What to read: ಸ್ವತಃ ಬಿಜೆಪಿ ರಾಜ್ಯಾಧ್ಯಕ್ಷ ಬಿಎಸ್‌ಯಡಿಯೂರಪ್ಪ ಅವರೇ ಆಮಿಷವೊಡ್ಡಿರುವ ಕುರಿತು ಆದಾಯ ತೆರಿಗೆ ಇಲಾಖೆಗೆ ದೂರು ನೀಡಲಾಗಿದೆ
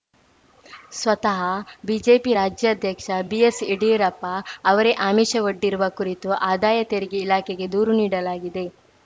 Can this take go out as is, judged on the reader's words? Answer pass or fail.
pass